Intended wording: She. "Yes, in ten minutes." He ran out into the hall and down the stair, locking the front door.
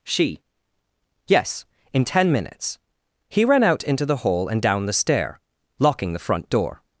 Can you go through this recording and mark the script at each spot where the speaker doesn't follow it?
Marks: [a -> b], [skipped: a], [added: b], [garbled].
She. "Yes, in ten minutes." He ran out into the hall and down the stair, locking the front door.